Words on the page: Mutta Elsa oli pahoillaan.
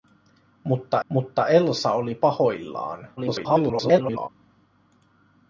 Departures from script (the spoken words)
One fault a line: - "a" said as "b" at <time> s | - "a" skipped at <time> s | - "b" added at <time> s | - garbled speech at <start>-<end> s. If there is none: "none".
- "mutta" added at 1.1 s
- garbled speech at 3.2-4.3 s